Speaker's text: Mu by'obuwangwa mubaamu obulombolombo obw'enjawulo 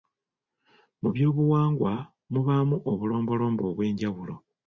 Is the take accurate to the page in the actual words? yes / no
yes